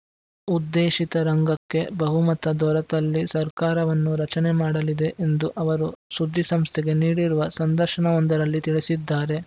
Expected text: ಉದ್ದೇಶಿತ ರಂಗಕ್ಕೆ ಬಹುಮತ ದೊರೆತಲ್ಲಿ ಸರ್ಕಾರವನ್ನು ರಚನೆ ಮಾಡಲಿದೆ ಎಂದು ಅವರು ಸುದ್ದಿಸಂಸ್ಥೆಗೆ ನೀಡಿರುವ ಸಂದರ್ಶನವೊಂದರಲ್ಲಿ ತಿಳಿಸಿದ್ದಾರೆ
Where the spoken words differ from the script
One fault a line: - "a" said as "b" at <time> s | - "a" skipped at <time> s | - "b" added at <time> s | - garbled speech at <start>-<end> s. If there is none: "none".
none